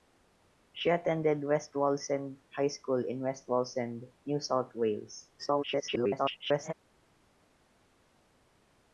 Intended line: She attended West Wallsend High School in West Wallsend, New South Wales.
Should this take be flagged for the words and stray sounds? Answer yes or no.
yes